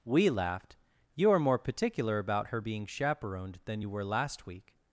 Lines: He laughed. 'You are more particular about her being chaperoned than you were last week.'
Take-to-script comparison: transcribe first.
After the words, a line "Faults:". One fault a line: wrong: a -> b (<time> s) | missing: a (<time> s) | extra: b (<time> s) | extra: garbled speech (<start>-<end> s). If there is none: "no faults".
We laughed. 'You are more particular about her being chaperoned than you were last week.'
Faults:
wrong: He -> We (0.1 s)